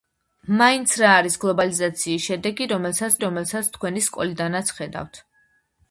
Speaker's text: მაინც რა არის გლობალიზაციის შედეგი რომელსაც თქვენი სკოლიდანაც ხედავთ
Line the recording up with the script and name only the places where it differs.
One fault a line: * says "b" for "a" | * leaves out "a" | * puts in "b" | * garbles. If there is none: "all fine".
* puts in "რომელსაც"